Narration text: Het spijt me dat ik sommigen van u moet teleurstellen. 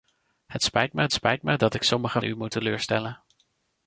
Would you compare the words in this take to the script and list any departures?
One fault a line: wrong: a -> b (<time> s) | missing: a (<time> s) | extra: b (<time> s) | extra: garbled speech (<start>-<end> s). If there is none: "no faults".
extra: spijt me (1.1 s)
missing: van (2.2 s)